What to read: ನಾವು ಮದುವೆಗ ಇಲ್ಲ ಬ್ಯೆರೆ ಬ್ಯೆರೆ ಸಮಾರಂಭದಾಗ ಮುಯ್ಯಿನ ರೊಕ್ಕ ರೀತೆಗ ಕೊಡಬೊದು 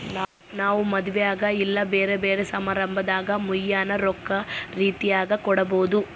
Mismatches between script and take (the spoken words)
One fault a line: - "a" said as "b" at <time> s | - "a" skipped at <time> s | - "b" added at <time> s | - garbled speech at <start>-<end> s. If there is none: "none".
none